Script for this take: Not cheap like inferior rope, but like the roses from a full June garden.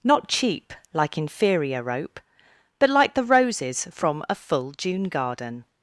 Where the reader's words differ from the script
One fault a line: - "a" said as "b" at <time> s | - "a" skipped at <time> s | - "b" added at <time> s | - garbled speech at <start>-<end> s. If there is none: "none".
none